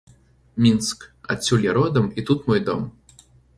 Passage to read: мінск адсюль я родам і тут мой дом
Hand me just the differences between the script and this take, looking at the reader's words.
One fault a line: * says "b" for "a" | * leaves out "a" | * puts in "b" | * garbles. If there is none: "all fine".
all fine